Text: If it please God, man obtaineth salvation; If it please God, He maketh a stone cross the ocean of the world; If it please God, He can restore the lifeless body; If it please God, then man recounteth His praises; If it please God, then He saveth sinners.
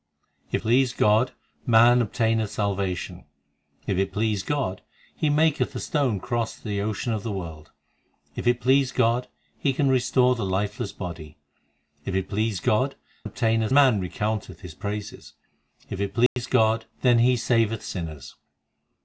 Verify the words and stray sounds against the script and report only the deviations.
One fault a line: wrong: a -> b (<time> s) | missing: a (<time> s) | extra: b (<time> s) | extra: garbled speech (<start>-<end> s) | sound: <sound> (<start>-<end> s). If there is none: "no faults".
missing: it (0.6 s)
wrong: then -> obtaineth (13.2 s)
sound: dropout (16.3-16.4 s)